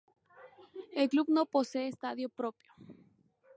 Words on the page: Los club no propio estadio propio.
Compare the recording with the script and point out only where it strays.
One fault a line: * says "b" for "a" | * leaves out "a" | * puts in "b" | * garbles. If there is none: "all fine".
* says "El" for "Los"
* says "posee" for "propio"